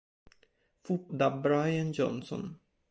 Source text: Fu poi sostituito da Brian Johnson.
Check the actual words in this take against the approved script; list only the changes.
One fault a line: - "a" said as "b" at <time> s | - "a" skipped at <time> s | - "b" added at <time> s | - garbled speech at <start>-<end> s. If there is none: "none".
- "poi sostituito" skipped at 1.1 s